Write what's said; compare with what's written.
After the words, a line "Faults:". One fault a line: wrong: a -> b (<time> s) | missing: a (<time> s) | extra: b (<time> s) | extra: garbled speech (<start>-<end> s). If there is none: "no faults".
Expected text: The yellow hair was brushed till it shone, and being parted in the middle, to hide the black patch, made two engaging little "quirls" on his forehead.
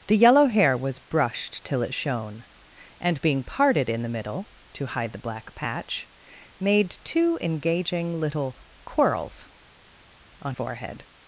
The yellow hair was brushed till it shone, and being parted in the middle, to hide the black patch, made two engaging little "quirls" on forehead.
Faults:
missing: his (10.5 s)